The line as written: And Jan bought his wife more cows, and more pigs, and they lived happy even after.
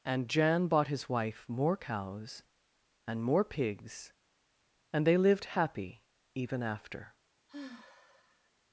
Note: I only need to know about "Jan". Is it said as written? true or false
true